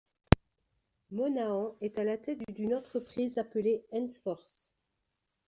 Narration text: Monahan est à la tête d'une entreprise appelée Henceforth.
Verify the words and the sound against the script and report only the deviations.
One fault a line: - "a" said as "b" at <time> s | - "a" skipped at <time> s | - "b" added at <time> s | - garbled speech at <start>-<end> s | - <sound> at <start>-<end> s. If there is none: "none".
none